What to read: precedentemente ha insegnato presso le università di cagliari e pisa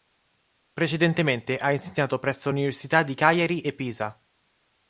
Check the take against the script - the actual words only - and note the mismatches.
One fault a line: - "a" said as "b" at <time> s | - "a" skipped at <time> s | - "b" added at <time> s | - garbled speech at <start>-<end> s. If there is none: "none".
- "le" skipped at 2.5 s